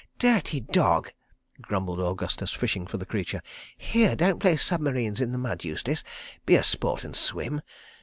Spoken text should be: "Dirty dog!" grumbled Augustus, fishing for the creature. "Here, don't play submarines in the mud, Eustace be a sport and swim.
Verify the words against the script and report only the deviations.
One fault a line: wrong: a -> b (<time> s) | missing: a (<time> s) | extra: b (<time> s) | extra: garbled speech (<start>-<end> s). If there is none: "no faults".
no faults